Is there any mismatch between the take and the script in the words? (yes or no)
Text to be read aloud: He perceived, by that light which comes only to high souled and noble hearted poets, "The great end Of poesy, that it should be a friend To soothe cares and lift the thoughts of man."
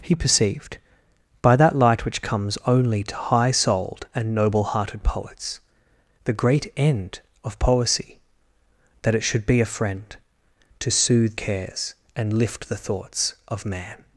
no